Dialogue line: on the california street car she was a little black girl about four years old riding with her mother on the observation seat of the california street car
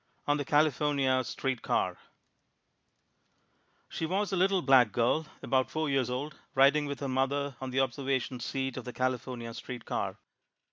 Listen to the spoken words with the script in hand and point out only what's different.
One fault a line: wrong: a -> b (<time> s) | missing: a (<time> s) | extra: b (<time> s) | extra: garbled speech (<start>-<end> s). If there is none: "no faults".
no faults